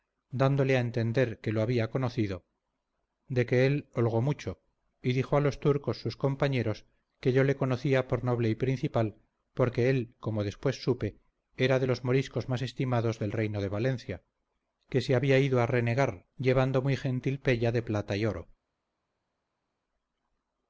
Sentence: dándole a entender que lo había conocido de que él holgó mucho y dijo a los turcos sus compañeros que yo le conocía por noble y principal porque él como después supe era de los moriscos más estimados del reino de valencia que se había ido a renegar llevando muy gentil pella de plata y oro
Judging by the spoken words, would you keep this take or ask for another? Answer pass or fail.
pass